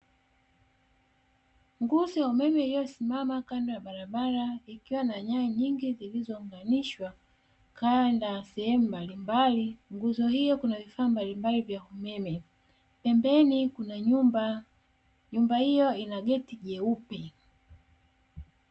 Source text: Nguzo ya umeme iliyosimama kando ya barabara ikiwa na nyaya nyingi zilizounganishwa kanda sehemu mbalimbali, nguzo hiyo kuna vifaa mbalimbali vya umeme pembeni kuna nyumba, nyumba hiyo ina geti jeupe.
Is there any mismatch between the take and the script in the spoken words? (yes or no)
no